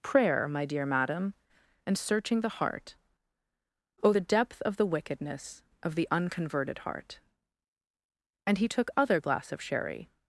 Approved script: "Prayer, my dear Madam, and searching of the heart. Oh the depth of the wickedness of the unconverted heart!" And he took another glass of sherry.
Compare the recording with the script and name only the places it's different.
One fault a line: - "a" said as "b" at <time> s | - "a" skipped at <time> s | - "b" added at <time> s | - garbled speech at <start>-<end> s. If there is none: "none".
- "of" skipped at 2.4 s
- "another" said as "other" at 9.0 s